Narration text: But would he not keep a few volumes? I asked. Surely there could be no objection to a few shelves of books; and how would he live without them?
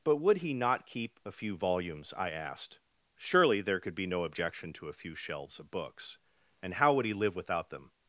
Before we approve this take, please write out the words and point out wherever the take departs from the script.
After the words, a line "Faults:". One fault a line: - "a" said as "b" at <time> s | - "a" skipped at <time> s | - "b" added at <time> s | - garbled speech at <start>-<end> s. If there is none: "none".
But would he not keep a few volumes? I asked. Surely there could be no objection to a few shelves of books; and how would he live without them?
Faults:
none